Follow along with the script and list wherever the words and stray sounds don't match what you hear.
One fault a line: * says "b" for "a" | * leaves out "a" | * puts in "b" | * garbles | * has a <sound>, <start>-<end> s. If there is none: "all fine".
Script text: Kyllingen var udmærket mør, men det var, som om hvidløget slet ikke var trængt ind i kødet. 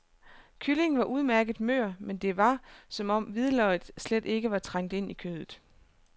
all fine